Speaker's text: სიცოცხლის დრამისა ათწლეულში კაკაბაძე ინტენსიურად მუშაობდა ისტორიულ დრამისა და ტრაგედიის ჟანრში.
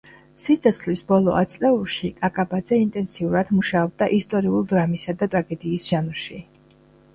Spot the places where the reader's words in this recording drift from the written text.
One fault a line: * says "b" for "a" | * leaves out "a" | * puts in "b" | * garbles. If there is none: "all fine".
* says "ბოლო" for "დრამისა"